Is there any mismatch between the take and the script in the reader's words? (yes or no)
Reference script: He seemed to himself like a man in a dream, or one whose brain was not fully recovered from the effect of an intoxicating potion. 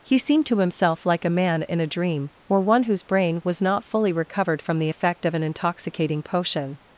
no